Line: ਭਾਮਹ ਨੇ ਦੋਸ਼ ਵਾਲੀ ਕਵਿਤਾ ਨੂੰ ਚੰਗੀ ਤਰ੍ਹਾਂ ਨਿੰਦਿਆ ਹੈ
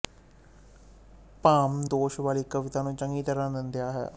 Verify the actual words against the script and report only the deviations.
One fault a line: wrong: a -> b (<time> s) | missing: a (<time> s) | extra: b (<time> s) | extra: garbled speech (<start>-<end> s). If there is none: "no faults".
missing: ਨੇ (1.9 s)